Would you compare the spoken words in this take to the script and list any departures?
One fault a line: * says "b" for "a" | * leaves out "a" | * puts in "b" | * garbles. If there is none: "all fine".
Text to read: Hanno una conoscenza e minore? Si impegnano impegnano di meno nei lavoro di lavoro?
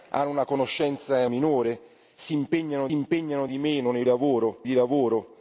all fine